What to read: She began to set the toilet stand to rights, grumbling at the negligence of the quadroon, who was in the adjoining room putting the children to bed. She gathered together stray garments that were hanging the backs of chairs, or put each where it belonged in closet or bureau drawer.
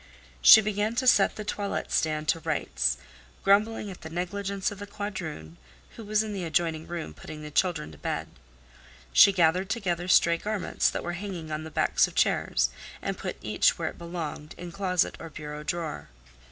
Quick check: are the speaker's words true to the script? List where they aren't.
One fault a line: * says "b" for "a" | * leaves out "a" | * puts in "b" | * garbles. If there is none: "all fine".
* puts in "on"
* says "and" for "or"